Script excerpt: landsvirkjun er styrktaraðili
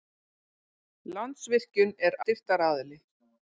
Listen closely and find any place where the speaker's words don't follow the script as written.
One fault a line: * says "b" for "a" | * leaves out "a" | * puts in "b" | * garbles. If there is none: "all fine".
all fine